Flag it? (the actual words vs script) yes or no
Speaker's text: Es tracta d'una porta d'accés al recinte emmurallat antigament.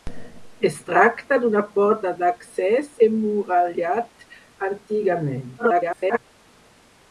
yes